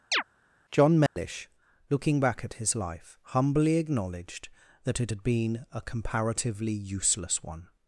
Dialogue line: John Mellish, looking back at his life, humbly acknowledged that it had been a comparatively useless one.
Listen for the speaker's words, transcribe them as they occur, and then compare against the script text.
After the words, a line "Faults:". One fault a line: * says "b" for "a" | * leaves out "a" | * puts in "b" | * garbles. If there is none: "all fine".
John Mellish, looking back at his life, humbly acknowledged that it had been a comparatively useless one.
Faults:
all fine